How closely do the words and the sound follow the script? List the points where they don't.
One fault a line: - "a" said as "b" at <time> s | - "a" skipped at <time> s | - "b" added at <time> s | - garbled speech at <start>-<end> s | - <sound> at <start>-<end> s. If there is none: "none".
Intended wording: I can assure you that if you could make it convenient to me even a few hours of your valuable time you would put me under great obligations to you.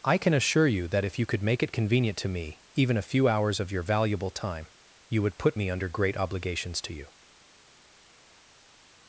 none